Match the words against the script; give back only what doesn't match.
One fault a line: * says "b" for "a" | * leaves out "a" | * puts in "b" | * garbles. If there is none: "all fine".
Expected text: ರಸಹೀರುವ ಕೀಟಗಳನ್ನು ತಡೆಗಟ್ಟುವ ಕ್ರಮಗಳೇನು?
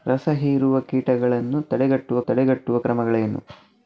* puts in "ತಡೆಗಟ್ಟುವ"